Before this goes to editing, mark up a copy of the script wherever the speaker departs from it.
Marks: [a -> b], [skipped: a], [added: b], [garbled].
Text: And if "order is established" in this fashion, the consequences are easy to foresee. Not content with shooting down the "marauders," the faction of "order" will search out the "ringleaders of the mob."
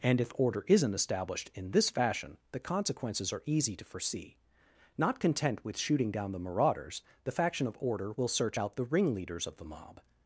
And if "order [is -> isn't] established" in this fashion, the consequences are easy to foresee. Not content with shooting down the "marauders," the faction of "order" will search out the "ringleaders of the mob."